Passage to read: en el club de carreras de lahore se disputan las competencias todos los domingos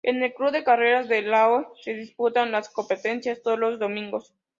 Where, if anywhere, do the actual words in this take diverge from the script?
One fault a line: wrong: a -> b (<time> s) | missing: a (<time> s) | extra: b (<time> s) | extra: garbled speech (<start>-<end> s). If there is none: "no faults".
no faults